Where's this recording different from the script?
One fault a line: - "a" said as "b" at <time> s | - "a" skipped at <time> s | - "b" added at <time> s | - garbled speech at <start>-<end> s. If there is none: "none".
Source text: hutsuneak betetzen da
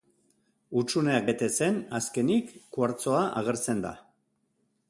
- "azkenik kuartzoa agertzen" added at 2.0 s